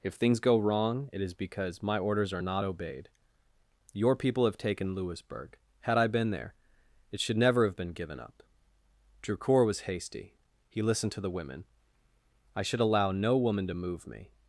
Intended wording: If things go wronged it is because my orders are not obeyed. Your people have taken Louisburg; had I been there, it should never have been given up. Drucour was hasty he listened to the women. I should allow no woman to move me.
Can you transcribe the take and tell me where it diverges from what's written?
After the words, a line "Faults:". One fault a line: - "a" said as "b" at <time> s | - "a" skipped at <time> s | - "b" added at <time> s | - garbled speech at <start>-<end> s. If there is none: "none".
If things go wrong it is because my orders are not obeyed. Your people have taken Louisburg; had I been there, it should never have been given up. Drucour was hasty he listened to the women. I should allow no woman to move me.
Faults:
- "wronged" said as "wrong" at 0.6 s